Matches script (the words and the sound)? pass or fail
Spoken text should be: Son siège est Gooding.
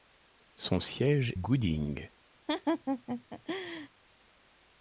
fail